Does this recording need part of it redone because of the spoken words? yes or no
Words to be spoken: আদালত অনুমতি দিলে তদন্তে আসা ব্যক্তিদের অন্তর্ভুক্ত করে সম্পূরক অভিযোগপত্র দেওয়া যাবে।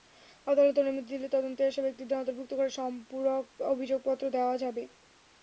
no